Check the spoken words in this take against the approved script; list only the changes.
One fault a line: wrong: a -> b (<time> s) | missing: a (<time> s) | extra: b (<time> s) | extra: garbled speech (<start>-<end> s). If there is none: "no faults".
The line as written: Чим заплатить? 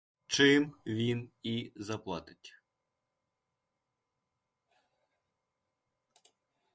extra: він і (0.8 s)